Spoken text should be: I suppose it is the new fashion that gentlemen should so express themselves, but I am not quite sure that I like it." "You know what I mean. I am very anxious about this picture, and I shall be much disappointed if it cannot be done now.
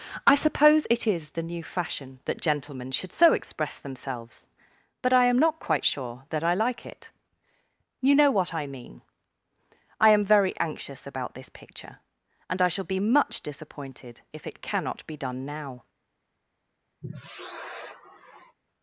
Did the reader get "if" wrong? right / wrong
right